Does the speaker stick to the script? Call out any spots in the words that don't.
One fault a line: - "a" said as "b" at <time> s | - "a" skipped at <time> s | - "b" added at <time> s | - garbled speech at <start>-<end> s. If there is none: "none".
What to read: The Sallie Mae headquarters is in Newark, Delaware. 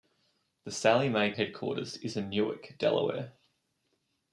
none